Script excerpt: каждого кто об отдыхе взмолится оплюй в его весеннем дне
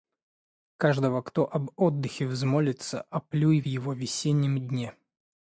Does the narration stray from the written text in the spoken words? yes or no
no